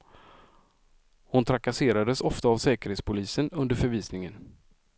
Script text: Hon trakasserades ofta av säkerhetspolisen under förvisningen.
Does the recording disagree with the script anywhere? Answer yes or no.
no